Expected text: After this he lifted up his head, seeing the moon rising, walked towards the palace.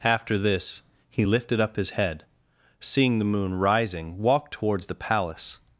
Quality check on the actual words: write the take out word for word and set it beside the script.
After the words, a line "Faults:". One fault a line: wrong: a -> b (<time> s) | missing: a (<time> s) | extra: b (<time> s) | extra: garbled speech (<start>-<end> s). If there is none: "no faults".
After this he lifted up his head, seeing the moon rising, walked towards the palace.
Faults:
no faults